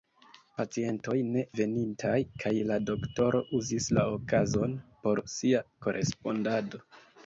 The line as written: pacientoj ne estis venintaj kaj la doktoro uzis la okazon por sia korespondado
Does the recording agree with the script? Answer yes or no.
no